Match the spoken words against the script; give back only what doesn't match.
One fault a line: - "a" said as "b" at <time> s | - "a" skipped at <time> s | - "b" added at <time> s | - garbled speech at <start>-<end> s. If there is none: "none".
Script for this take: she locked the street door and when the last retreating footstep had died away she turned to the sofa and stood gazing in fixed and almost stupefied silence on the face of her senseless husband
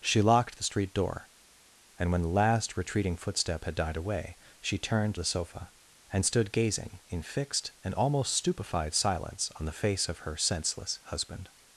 - "to" skipped at 5.2 s